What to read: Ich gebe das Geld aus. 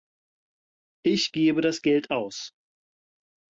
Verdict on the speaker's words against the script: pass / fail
pass